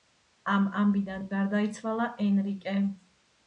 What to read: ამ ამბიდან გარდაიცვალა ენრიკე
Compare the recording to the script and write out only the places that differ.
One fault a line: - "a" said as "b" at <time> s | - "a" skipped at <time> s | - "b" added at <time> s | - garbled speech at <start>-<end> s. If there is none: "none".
none